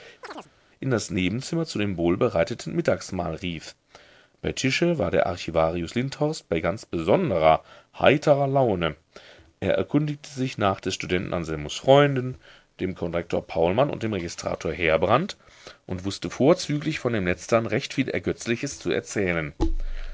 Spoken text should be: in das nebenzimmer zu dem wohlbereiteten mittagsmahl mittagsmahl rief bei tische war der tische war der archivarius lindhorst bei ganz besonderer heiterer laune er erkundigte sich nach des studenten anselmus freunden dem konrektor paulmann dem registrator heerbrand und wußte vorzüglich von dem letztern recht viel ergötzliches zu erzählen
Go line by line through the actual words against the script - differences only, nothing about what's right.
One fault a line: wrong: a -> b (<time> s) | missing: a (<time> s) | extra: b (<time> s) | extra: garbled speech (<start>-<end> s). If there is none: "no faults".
missing: mittagsmahl (3.4 s)
missing: tische war der (5.3 s)
extra: und (13.9 s)